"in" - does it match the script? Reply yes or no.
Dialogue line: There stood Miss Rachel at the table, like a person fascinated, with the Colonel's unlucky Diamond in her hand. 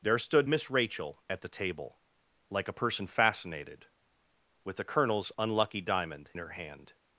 no